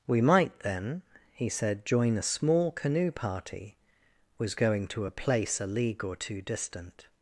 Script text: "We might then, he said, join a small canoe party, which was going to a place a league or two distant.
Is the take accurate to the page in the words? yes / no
no